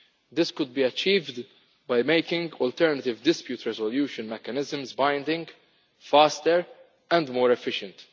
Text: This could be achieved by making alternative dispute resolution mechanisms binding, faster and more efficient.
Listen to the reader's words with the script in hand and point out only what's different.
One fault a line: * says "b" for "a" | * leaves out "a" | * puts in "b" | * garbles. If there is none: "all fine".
all fine